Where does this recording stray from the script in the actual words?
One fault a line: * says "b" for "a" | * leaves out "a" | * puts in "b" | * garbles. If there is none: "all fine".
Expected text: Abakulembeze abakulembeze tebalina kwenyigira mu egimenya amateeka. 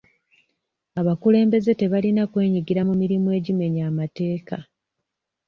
* leaves out "abakulembeze"
* puts in "mirimu"